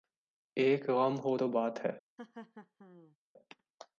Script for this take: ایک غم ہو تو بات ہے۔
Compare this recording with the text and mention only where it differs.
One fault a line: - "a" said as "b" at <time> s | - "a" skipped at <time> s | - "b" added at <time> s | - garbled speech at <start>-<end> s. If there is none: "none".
none